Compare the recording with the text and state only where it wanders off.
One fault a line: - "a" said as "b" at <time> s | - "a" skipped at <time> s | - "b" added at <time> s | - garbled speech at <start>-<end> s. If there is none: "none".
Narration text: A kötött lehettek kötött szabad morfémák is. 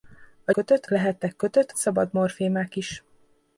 none